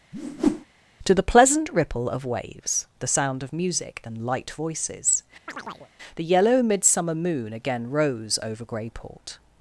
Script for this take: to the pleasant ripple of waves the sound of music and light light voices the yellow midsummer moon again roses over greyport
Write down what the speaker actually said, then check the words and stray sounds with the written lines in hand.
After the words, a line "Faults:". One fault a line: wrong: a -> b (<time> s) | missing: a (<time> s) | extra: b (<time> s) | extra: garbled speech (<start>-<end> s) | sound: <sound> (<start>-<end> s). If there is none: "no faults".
to the pleasant ripple of waves the sound of music and light voices the yellow midsummer moon again rose over greyport
Faults:
sound: whoosh (0.1-0.6 s)
missing: light (4.5 s)
sound: chirp (5.5-5.9 s)
wrong: roses -> rose (7.9 s)